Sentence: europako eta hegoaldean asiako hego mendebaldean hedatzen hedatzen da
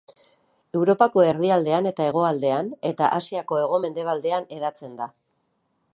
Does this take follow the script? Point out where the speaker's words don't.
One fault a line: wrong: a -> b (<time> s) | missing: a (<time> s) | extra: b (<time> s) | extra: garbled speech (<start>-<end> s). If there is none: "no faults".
extra: erdialdean (1.3 s)
extra: eta (2.9 s)
missing: hedatzen (5.0 s)